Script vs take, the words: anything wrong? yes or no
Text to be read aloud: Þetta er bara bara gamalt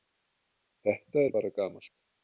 yes